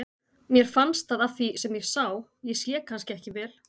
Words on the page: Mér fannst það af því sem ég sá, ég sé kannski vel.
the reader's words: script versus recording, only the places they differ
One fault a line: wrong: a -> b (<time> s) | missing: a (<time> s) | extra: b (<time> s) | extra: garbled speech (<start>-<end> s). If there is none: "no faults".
extra: ekki (3.2 s)